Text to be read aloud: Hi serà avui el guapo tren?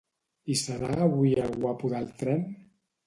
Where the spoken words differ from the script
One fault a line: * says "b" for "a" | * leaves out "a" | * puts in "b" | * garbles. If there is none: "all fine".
* puts in "del"